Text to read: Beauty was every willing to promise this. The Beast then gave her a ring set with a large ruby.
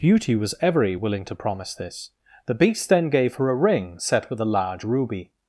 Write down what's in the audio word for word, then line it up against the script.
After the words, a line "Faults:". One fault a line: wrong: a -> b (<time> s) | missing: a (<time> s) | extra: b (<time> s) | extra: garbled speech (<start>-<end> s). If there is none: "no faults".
Beauty was every willing to promise this. The Beast then gave her a ring set with a large ruby.
Faults:
no faults